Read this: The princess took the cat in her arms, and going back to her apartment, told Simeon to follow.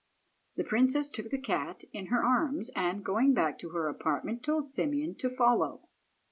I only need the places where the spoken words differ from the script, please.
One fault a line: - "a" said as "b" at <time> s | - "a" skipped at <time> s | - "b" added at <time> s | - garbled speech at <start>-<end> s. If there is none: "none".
none